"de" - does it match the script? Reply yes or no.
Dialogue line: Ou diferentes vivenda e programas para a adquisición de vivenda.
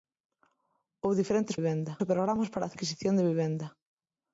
yes